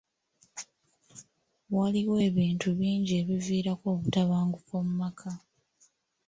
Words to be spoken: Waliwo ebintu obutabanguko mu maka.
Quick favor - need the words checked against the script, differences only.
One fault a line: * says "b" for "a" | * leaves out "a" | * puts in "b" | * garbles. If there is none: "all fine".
* puts in "bingi ebiviirako"